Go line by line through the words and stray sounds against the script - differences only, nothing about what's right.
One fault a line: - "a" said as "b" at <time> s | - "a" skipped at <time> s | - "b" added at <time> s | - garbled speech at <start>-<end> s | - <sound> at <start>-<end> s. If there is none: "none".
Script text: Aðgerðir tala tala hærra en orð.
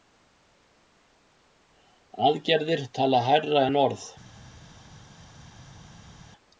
- "tala" skipped at 3.2 s